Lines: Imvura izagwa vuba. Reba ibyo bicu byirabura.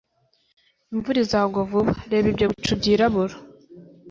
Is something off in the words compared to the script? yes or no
no